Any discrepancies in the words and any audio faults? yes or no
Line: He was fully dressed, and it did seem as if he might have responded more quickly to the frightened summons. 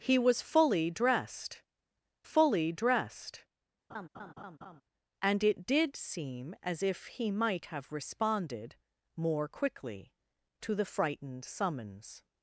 yes